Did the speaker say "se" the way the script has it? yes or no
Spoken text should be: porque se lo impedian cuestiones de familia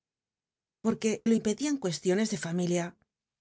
no